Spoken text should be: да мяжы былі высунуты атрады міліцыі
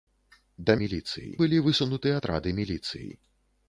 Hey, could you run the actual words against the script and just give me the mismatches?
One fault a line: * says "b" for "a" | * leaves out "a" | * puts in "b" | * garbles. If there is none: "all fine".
* says "міліцыі" for "мяжы"